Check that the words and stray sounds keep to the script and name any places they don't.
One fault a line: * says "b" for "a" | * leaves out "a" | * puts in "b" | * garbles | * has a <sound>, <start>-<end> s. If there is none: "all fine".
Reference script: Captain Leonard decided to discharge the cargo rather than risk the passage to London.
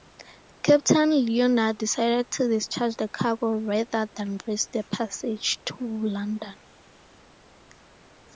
all fine